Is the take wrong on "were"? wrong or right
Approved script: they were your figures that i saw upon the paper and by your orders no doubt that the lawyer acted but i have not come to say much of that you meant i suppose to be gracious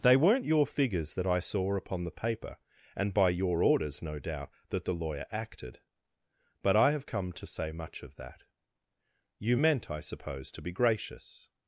wrong